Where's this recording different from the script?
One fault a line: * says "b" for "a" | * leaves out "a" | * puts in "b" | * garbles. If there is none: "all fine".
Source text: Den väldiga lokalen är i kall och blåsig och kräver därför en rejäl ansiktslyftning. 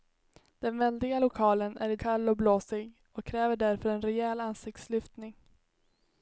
all fine